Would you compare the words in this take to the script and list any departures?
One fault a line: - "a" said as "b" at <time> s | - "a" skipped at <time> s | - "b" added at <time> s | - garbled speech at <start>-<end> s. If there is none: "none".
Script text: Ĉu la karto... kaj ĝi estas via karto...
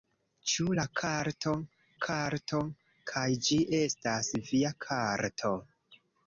- "karto" added at 2.1 s